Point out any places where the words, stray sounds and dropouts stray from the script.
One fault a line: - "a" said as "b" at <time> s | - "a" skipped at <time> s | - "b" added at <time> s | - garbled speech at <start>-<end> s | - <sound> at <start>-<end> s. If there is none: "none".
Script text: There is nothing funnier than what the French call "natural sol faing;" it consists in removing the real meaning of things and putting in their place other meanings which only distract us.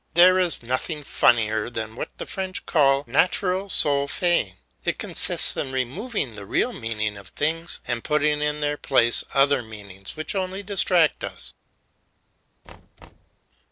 - thud at 12.6-13.4 s